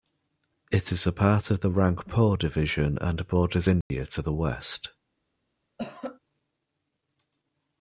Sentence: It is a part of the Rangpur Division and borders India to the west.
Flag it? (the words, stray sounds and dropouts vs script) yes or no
yes